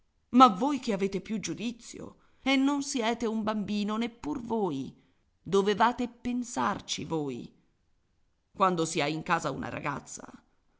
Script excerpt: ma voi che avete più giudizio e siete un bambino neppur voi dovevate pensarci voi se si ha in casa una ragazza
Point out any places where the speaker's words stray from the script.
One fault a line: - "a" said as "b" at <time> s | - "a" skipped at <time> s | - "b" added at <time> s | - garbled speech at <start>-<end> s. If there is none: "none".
- "non" added at 2.6 s
- "se" said as "quando" at 8.5 s